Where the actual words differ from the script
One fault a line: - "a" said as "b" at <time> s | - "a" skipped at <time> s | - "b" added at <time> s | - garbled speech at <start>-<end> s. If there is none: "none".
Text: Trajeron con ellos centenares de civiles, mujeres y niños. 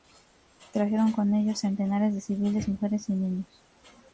none